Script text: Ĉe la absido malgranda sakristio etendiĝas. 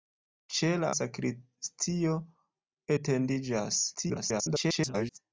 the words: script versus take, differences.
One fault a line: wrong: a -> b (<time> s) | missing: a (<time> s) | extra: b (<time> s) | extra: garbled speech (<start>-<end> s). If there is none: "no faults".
missing: absido malgranda (0.9 s)
extra: garbled speech (3.9-5.2 s)